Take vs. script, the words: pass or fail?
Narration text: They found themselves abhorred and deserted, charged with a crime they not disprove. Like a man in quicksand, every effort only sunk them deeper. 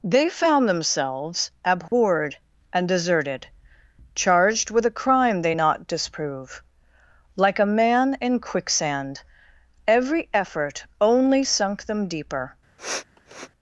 pass